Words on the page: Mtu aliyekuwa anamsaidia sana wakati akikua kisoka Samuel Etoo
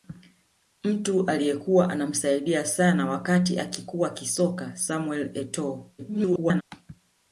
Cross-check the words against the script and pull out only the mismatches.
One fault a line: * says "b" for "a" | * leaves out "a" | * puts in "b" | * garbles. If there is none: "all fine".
* garbles